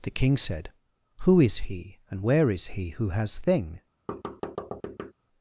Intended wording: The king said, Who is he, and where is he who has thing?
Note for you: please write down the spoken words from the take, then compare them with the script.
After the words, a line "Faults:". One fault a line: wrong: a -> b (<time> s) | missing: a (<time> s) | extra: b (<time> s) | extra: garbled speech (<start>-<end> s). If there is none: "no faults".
The king said, Who is he, and where is he who has thing?
Faults:
no faults